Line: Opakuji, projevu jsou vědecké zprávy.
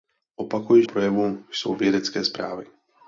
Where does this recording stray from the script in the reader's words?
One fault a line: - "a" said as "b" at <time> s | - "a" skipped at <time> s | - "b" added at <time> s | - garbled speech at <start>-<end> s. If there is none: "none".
none